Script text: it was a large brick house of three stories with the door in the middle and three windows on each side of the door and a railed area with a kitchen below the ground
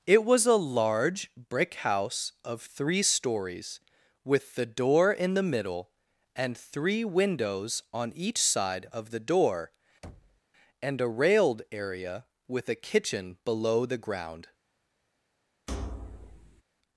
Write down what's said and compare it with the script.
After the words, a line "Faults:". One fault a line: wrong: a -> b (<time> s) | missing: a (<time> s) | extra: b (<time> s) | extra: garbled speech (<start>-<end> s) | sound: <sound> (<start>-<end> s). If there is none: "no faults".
it was a large brick house of three stories with the door in the middle and three windows on each side of the door and a railed area with a kitchen below the ground
Faults:
sound: thud (10.0-10.4 s)
sound: thud (15.7-16.6 s)